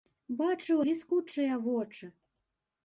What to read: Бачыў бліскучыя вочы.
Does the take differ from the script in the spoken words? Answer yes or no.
no